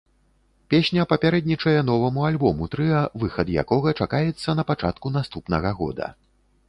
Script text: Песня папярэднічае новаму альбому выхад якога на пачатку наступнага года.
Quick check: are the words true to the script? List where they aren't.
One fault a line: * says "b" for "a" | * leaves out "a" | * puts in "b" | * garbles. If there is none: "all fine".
* puts in "трыа"
* puts in "чакаецца"